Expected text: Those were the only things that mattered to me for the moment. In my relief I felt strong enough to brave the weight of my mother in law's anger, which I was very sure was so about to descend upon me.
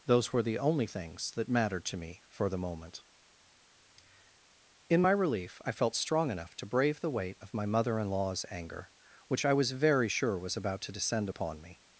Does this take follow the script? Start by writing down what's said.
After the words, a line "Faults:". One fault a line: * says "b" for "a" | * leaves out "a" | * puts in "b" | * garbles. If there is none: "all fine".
Those were the only things that mattered to me for the moment. In my relief I felt strong enough to brave the weight of my mother in law's anger, which I was very sure was about to descend upon me.
Faults:
* leaves out "so"